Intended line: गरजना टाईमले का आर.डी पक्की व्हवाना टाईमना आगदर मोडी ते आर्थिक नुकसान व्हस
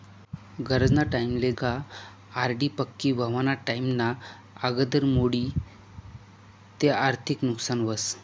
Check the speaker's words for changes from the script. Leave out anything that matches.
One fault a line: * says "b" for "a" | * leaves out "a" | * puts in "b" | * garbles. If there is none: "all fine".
all fine